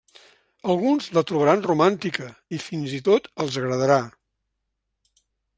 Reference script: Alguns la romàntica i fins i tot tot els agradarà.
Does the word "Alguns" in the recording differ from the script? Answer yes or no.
no